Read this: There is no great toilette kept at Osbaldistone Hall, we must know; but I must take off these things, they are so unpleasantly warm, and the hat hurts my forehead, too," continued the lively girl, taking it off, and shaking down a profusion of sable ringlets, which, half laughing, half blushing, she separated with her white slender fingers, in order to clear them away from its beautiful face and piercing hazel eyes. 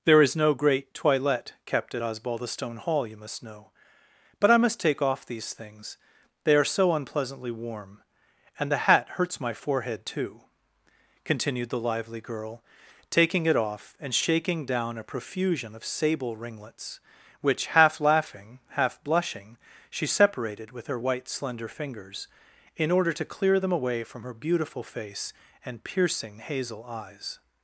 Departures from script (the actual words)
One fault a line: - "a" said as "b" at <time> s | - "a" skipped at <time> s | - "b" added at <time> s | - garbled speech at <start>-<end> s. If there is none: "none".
- "we" said as "you" at 3.0 s
- "its" said as "her" at 24.2 s